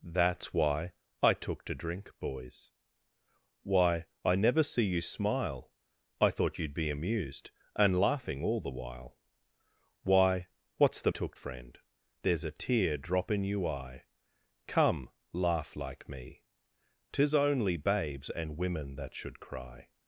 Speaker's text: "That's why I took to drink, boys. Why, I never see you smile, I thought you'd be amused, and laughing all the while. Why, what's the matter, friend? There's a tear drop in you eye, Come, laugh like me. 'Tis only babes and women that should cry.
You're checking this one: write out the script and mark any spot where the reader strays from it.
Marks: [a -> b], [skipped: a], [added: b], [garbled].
"That's why I took to drink, boys. Why, I never see you smile, I thought you'd be amused, and laughing all the while. Why, what's the [matter, -> took] friend? There's a tear drop in you eye, Come, laugh like me. 'Tis only babes and women that should cry.